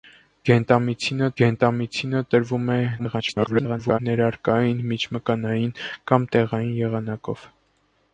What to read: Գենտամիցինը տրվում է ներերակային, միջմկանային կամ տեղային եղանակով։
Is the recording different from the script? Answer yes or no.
yes